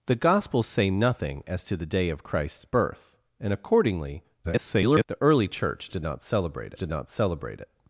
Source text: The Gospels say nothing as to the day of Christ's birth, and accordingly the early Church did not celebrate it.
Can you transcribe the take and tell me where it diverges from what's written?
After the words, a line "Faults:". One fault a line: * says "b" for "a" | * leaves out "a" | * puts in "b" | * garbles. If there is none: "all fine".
The Gospels say nothing as to the day of Christ's birth, and accordingly [garbled] the early Church did not celebrate did not celebrate it.
Faults:
* garbles
* puts in "did not celebrate"